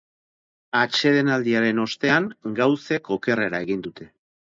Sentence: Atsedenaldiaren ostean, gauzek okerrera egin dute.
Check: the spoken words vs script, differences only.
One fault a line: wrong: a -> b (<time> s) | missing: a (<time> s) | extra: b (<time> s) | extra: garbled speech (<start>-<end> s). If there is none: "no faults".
no faults